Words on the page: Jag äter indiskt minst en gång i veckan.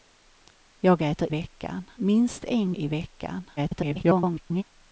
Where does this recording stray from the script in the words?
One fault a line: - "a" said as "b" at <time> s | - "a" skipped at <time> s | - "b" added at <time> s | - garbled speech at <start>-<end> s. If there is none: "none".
- "indiskt" said as "veckan" at 1.3 s
- "gång" skipped at 2.7 s
- garbled speech at 3.6-4.6 s